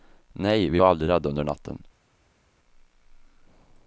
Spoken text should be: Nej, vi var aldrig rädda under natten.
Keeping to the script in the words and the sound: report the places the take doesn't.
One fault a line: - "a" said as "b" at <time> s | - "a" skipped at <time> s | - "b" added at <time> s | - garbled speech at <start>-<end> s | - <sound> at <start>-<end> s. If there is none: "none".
none